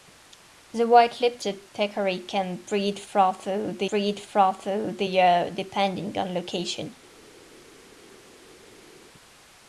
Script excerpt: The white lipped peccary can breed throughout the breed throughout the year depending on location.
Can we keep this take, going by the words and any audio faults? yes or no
yes